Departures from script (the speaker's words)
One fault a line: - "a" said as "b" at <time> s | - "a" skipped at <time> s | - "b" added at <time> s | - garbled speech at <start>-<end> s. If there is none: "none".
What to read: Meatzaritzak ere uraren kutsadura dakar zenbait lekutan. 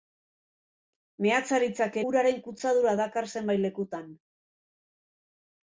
- "ere" skipped at 2.0 s